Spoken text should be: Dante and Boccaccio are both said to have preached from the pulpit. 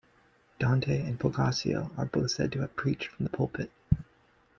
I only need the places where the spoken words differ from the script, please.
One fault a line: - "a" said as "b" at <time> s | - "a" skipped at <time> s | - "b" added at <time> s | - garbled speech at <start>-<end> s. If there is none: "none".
none